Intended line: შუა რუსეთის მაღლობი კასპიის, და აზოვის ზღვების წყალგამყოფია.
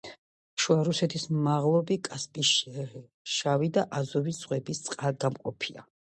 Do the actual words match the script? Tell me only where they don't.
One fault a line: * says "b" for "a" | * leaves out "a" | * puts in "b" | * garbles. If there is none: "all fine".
* puts in "შავი"